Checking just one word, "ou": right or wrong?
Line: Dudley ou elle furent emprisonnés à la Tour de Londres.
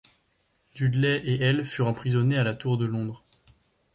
wrong